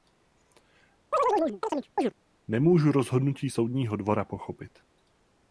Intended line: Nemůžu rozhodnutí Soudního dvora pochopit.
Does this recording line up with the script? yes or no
yes